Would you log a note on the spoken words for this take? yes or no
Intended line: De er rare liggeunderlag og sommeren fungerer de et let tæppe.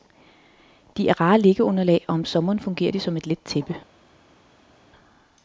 yes